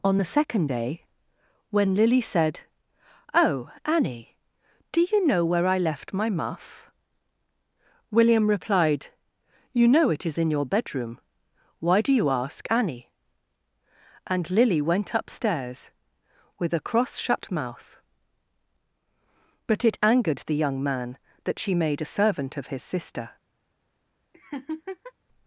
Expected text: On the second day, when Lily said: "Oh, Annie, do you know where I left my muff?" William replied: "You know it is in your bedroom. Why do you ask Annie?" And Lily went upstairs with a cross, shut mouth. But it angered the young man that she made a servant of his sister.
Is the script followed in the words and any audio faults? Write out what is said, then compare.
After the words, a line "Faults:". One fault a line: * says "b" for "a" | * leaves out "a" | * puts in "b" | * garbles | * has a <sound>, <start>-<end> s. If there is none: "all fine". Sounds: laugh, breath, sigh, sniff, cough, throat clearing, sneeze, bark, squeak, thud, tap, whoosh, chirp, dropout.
On the second day, when Lily said: "Oh, Annie, do you know where I left my muff?" William replied: "You know it is in your bedroom. Why do you ask Annie?" And Lily went upstairs with a cross, shut mouth. But it angered the young man that she made a servant of his sister.
Faults:
* has a laugh, 24.3-25.1 s